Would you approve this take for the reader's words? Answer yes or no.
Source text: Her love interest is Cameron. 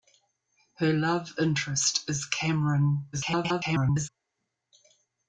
no